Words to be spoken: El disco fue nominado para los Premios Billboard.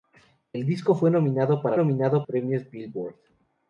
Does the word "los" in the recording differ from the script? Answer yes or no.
yes